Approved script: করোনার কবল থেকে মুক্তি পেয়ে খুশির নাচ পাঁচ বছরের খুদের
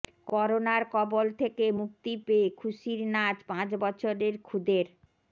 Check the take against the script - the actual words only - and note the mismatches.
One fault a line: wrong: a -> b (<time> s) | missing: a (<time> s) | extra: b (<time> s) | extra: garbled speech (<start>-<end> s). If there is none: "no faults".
no faults